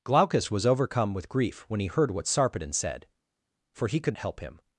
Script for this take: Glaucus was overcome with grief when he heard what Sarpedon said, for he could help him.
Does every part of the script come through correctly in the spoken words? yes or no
yes